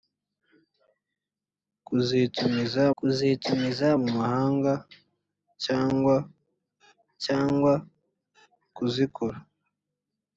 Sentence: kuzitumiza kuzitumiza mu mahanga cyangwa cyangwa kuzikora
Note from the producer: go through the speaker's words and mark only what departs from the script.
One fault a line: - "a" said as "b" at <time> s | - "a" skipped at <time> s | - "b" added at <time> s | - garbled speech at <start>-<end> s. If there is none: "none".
none